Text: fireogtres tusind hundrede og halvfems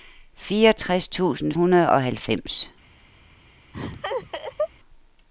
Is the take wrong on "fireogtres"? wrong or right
right